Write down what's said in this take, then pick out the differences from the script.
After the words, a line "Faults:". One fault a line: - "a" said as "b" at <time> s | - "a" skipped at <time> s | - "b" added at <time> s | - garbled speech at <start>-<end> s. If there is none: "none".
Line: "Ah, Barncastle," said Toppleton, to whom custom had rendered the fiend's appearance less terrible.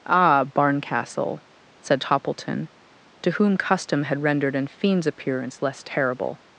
"Ah, Barncastle," said Toppleton, to whom custom had rendered an fiend's appearance less terrible.
Faults:
- "the" said as "an" at 4.6 s